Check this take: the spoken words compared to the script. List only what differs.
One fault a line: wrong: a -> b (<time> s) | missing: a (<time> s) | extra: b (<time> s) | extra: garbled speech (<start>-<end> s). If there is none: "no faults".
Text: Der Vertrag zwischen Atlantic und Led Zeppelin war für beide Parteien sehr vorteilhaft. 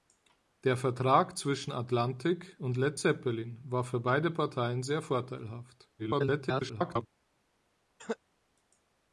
extra: garbled speech (6.0-7.1 s)